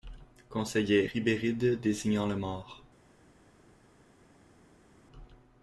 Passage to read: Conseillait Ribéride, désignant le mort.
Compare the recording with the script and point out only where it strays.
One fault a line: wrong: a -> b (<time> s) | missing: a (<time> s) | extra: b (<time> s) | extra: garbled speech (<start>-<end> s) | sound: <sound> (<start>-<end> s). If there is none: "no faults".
no faults